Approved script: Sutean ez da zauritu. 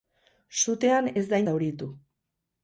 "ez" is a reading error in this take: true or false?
false